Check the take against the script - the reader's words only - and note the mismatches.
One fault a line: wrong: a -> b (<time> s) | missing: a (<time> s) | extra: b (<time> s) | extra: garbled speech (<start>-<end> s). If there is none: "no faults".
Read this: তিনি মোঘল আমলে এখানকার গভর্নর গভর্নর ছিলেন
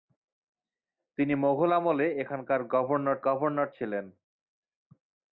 no faults